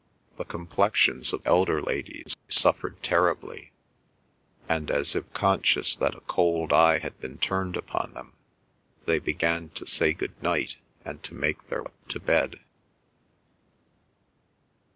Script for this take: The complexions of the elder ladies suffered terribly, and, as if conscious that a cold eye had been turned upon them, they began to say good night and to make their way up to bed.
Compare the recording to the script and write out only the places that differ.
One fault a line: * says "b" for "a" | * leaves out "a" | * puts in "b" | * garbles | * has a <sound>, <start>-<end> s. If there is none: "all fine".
* leaves out "the"
* leaves out "way"